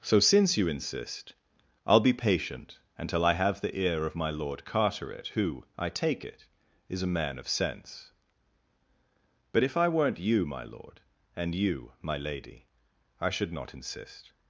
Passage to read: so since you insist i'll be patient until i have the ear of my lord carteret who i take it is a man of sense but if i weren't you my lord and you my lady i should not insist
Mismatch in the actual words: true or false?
false